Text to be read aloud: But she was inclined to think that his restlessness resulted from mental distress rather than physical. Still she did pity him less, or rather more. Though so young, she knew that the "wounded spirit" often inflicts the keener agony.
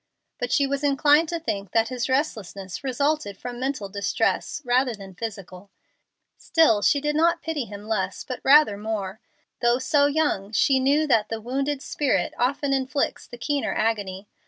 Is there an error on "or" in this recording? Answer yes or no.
yes